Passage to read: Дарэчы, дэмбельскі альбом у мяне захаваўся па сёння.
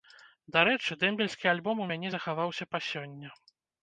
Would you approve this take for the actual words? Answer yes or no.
yes